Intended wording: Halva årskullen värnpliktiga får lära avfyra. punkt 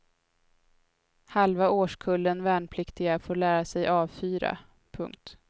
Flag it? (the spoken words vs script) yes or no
yes